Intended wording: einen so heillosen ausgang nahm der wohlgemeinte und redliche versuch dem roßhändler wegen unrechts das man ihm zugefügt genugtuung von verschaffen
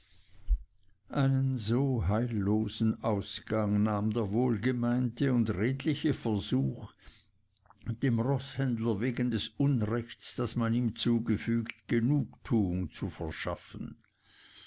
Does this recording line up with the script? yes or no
no